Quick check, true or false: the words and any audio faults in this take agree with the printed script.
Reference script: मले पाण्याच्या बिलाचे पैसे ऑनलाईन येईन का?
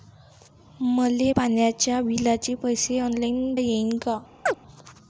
false